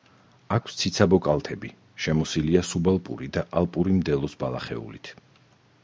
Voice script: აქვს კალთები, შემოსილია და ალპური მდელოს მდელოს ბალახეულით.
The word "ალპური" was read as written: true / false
true